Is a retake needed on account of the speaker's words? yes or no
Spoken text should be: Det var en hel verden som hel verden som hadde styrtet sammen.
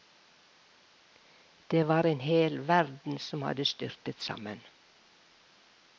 yes